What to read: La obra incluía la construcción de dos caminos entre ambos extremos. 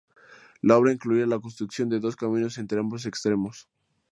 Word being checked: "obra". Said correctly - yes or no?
yes